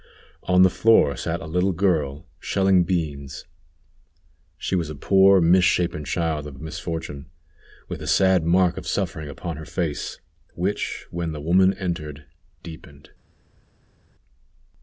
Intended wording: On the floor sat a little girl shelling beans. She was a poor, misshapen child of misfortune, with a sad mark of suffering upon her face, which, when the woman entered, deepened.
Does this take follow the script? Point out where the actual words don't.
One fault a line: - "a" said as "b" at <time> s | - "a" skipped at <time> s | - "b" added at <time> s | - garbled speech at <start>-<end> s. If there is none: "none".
- "of" added at 6.5 s